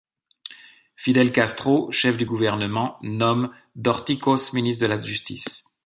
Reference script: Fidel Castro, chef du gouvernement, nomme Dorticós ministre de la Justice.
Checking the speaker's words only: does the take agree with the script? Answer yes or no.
yes